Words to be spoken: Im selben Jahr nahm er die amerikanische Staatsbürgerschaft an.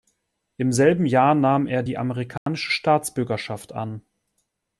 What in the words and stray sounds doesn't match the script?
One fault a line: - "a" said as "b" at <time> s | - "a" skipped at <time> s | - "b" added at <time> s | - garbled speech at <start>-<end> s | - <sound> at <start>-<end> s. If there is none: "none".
- dropout at 2.4-2.5 s